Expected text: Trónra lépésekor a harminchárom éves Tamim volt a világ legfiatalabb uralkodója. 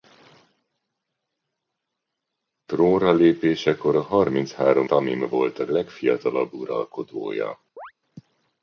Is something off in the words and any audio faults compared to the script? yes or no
yes